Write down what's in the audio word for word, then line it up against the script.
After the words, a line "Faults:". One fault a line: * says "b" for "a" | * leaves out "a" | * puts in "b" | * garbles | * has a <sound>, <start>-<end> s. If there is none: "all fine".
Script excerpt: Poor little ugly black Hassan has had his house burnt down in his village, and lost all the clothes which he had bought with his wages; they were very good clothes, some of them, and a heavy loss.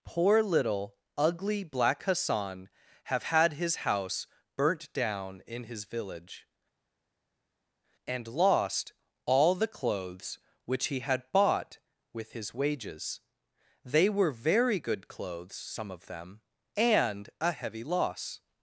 Poor little ugly black Hassan have had his house burnt down in his village, and lost all the clothes which he had bought with his wages; they were very good clothes, some of them, and a heavy loss.
Faults:
* says "have" for "has"